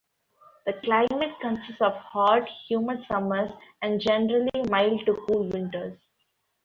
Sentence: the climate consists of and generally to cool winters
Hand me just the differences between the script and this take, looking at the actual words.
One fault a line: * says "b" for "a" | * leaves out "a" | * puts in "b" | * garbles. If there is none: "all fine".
* puts in "hot humid summers"
* puts in "mild"